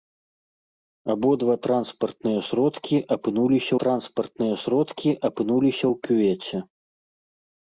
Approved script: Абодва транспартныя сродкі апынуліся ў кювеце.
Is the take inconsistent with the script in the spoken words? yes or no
yes